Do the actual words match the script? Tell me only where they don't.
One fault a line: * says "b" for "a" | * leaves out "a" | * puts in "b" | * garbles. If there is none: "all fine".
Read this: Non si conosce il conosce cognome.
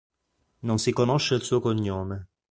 * says "suo" for "conosce"